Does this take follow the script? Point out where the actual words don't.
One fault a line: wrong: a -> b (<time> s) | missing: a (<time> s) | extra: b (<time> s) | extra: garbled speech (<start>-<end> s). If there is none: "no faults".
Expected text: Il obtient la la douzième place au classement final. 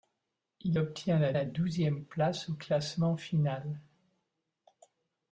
no faults